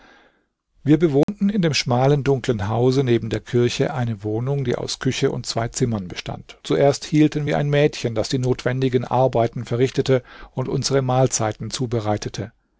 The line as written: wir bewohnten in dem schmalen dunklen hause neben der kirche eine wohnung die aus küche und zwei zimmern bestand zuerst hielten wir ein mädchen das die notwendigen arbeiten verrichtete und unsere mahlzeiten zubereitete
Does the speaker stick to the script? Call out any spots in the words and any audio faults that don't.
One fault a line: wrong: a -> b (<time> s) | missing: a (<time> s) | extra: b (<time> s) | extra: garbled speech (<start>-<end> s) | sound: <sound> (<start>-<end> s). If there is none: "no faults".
sound: dropout (1.2-1.3 s)